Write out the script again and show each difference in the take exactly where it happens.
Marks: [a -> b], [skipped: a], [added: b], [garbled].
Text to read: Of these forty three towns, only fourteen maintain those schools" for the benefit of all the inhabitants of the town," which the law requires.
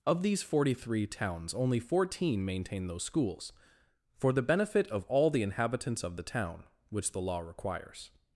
Of these forty three towns, only fourteen maintain those schools" for the benefit of all the inhabitants of the town," which the law requires.